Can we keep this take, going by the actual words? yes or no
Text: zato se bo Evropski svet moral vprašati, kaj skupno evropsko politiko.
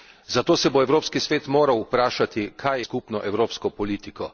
yes